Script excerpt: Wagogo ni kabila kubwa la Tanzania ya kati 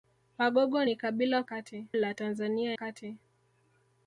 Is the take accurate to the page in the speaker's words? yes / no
no